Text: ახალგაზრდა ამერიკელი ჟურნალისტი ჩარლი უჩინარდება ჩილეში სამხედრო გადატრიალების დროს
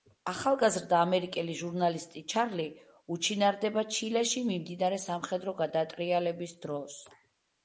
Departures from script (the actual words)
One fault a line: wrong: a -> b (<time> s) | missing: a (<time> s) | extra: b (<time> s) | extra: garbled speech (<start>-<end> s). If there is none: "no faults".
extra: მიმდინარე (4.5 s)